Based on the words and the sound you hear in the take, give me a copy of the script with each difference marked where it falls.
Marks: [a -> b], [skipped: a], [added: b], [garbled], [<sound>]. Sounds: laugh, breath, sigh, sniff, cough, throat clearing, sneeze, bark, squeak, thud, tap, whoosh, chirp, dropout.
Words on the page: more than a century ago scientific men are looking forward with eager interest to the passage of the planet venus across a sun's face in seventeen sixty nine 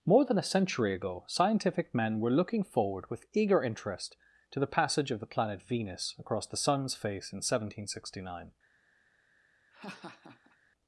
more than a century ago scientific men [are -> were] looking forward with eager interest to the passage of the planet venus across [a -> the] sun's face in seventeen sixty nine [laugh]